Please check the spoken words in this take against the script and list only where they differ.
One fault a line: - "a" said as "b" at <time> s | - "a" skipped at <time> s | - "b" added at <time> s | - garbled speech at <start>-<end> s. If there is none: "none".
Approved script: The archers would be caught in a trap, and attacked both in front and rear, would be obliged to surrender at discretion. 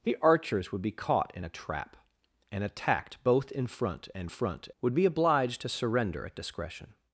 - "rear" said as "front" at 4.3 s